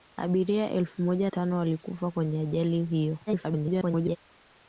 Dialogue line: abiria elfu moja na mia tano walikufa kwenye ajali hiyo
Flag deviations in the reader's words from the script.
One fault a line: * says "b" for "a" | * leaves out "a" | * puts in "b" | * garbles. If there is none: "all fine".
* leaves out "na mia"
* garbles